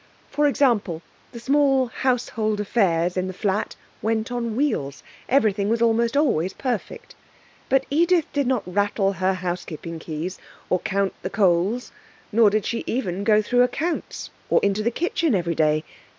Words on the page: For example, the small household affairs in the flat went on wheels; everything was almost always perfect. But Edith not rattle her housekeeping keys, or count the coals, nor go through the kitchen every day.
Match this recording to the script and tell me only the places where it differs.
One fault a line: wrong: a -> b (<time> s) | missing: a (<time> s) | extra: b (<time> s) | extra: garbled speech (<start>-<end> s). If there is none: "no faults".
extra: did (8.3 s)
extra: did she even (12.5 s)
extra: accounts or into (13.6 s)